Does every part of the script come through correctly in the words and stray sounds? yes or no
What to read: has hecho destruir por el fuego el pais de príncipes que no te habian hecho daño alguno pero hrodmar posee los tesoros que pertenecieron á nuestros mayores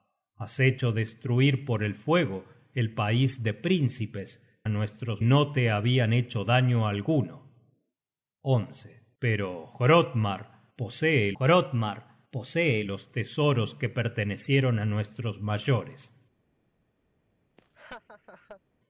no